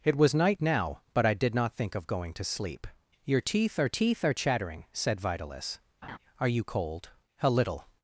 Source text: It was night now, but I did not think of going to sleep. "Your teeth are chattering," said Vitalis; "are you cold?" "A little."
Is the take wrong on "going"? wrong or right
right